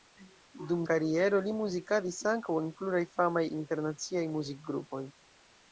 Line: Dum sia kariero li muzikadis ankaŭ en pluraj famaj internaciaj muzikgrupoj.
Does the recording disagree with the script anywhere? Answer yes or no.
yes